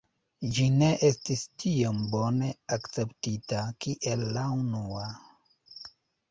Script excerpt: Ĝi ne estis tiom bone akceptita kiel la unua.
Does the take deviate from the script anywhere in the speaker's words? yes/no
no